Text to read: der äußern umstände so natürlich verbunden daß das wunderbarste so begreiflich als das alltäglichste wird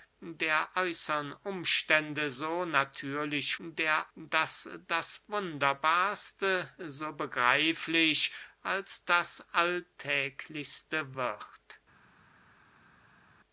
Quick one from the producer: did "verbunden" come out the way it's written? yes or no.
no